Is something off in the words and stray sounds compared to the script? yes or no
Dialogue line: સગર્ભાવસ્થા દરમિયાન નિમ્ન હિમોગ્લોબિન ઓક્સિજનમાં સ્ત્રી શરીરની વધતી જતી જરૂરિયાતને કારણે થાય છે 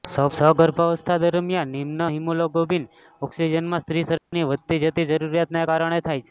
yes